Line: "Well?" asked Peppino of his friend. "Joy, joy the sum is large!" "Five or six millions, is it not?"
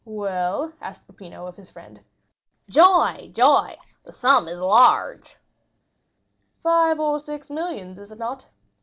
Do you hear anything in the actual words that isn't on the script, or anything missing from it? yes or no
no